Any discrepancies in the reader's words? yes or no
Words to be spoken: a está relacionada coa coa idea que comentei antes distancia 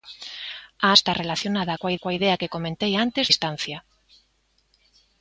no